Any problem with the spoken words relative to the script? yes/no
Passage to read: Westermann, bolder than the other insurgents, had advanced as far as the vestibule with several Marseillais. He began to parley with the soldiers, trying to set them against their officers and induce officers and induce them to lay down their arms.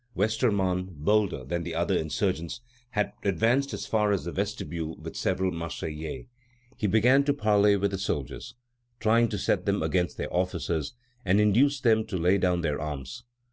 yes